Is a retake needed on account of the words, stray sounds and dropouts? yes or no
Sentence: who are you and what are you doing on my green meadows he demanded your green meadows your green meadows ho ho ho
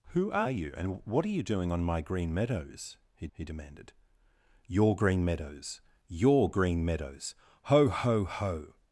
yes